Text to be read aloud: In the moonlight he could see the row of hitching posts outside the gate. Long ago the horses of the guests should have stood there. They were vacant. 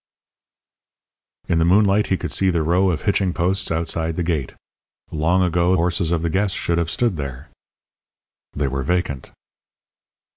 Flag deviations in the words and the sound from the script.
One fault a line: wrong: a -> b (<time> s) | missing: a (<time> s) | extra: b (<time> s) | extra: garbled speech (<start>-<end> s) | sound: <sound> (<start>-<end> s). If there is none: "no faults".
missing: the (5.8 s)